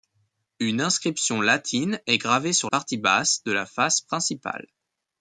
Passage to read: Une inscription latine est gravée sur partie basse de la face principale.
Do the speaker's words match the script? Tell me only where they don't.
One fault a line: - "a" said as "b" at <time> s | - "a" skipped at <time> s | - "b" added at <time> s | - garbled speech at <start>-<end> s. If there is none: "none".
none